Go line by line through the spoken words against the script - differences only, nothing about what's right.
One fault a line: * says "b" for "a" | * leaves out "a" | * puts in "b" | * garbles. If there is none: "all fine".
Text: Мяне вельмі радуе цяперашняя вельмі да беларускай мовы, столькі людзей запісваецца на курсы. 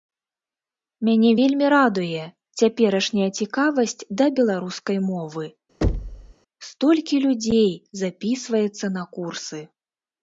* says "цікавасць" for "вельмі"